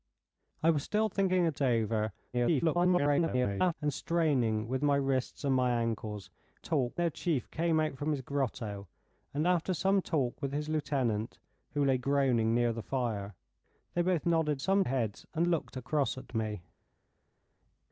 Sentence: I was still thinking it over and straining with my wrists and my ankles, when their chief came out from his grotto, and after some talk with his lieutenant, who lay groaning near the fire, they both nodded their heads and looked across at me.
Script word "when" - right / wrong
wrong